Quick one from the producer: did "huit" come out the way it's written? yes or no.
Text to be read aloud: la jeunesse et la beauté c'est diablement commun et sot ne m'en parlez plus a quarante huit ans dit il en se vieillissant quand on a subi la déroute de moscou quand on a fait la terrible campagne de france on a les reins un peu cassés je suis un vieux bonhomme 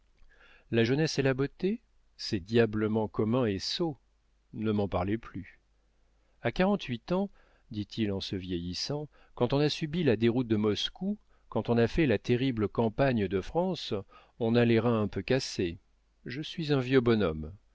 yes